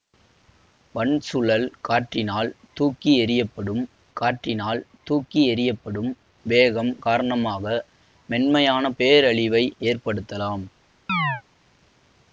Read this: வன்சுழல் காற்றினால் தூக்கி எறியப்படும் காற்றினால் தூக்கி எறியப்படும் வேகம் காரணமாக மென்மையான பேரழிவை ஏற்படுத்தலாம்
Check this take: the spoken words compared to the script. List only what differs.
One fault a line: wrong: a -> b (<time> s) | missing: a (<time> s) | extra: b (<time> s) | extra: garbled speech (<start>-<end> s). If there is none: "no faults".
no faults